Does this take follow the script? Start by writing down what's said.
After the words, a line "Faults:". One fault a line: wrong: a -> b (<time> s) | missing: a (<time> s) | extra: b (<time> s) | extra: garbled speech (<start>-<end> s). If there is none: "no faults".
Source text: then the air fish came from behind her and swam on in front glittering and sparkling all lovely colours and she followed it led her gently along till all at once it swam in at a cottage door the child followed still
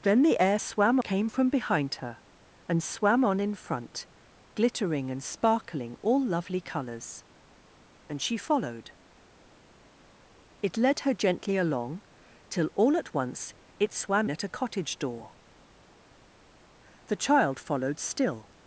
then the air swam came from behind her and swam on in front glittering and sparkling all lovely colours and she followed it led her gently along till all at once it swam at a cottage door the child followed still
Faults:
wrong: fish -> swam (0.6 s)
missing: in (14.3 s)